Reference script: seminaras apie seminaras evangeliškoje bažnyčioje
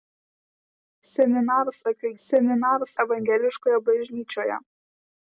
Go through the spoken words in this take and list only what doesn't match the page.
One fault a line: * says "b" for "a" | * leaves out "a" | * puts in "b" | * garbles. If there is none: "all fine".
all fine